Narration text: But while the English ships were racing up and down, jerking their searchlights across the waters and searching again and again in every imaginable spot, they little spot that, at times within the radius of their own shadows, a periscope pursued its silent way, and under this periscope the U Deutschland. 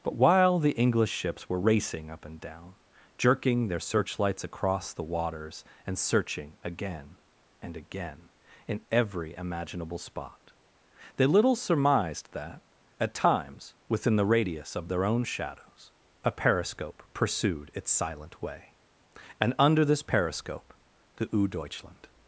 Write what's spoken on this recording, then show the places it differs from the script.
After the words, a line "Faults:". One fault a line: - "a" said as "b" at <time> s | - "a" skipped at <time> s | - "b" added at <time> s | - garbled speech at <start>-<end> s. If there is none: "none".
But while the English ships were racing up and down, jerking their searchlights across the waters and searching again and again in every imaginable spot, they little surmised that, at times within the radius of their own shadows, a periscope pursued its silent way, and under this periscope the U Deutschland.
Faults:
- "spot" said as "surmised" at 11.6 s